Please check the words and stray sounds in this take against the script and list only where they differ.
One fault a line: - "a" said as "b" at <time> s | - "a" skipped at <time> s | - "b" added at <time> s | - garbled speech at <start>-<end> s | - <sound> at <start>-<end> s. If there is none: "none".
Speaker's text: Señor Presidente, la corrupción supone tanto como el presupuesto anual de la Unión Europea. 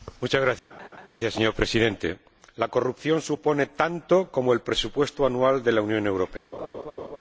- laugh at 0.7-1.1 s
- laugh at 6.5-7.2 s